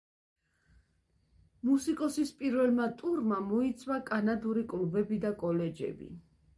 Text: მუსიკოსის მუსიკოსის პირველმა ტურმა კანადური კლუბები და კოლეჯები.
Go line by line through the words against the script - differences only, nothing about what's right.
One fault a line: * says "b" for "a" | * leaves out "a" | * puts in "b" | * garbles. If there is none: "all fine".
* leaves out "მუსიკოსის"
* puts in "მოიცვა"